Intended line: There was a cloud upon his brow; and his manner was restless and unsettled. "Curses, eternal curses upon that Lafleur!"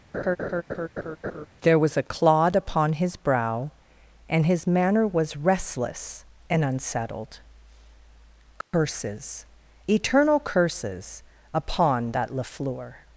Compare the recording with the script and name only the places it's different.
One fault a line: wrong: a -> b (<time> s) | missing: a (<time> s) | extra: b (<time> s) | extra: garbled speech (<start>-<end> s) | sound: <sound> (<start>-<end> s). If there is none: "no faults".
sound: laugh (0.1-1.5 s)
wrong: cloud -> clod (2.0 s)
sound: dropout (8.6-8.7 s)